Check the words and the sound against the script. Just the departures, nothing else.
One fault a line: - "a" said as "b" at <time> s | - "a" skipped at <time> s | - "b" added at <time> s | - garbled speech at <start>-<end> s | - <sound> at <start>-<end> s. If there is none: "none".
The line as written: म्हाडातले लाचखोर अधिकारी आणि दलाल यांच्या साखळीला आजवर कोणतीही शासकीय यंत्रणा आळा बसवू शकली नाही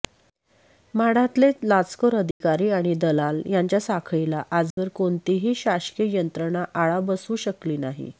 - dropout at 2.3-2.4 s
- dropout at 4.7-4.8 s